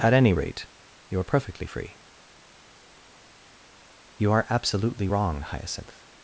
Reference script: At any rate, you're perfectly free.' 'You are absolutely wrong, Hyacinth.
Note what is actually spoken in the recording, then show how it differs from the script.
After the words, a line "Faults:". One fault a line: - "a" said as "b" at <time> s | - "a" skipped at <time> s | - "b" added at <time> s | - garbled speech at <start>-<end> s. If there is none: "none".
At any rate, you're perfectly free.' 'You are absolutely wrong, Hyacinth.
Faults:
none